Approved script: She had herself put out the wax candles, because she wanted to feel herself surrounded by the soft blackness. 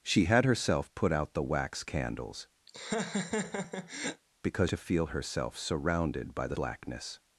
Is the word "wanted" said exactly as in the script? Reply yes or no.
no